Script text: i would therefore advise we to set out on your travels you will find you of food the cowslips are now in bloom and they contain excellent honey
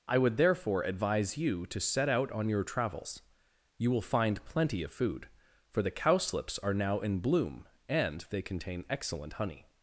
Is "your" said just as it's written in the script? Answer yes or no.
yes